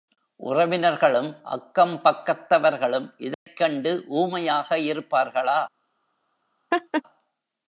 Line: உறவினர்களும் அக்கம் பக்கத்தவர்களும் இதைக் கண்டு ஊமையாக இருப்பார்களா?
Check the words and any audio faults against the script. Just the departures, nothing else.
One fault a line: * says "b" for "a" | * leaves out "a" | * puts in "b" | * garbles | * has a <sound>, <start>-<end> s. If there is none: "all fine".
* has a dropout, 3.3-3.5 s
* has a laugh, 6.7-7.0 s